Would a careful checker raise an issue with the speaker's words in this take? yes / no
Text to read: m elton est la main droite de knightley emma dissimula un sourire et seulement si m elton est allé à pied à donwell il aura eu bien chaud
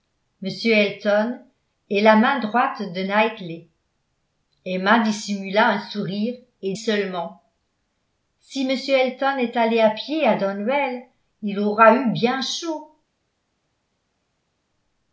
no